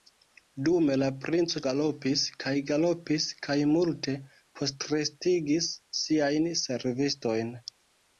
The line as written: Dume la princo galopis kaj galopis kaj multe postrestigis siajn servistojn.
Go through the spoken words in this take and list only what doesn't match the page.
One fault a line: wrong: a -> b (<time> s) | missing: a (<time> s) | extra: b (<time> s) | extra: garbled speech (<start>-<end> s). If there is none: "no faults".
no faults